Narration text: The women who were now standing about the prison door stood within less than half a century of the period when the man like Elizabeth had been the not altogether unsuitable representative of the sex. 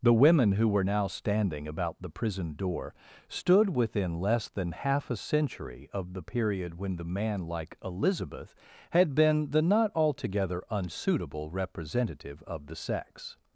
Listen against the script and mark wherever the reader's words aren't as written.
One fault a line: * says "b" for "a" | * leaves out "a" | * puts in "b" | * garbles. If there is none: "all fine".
all fine